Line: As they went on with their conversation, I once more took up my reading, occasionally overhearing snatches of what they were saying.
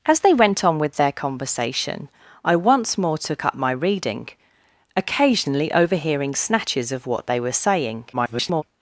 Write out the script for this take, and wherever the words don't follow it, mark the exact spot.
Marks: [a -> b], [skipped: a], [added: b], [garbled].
As they went on with their conversation, I once more took up my reading, occasionally overhearing snatches of what they were saying. [garbled]